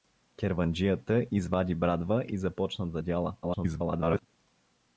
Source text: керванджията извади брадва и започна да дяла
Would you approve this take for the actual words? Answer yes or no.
no